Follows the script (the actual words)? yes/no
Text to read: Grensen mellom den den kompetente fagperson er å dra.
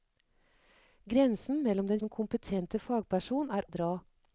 yes